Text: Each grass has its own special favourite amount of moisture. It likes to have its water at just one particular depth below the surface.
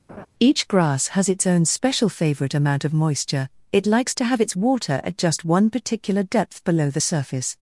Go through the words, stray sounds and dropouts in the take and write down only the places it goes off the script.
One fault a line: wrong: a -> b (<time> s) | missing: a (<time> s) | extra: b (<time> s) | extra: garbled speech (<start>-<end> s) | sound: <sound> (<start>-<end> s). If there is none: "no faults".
sound: laugh (0.1-0.3 s)